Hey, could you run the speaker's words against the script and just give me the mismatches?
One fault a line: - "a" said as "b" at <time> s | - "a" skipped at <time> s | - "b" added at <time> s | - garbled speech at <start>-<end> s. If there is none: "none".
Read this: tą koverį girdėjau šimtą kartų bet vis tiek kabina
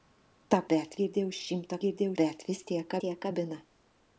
- "koverį" said as "bet" at 0.7 s
- "kartų" said as "girdėjau" at 1.8 s
- "tiek" added at 3.0 s